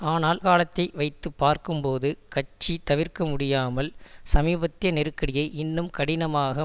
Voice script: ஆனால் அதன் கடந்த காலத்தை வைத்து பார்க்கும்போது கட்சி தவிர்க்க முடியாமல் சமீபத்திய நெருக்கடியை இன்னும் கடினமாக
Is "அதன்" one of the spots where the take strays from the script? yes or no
yes